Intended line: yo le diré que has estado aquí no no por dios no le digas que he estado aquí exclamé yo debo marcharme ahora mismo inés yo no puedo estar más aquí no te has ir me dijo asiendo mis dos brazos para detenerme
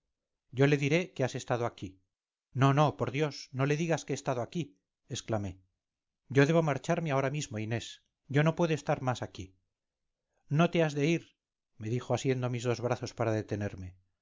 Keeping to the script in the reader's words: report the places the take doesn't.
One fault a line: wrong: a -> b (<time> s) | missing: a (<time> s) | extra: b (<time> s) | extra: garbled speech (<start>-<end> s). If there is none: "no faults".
extra: de (10.9 s)